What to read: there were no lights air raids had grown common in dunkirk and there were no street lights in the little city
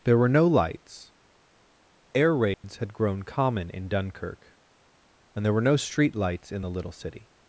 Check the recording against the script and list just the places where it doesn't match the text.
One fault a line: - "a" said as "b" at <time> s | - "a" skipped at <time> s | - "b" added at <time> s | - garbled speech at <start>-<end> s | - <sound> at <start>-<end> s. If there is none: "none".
- dropout at 2.5-2.6 s